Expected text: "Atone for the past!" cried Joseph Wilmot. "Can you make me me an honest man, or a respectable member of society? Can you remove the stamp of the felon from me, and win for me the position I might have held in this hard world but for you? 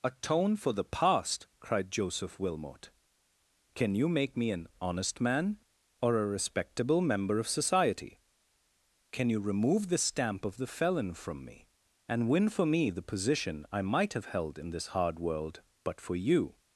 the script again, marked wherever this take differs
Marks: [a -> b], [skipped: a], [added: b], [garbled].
"Atone for the past!" cried Joseph Wilmot. "Can you make me [skipped: me] an honest man, or a respectable member of society? Can you remove the stamp of the felon from me, and win for me the position I might have held in this hard world but for you?